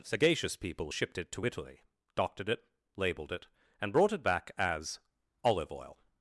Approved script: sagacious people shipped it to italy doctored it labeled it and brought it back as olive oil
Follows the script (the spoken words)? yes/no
yes